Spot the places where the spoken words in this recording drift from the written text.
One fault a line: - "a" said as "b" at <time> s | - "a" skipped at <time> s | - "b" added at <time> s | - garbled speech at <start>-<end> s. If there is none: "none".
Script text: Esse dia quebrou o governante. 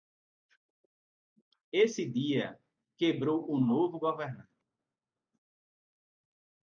- "novo" added at 3.6 s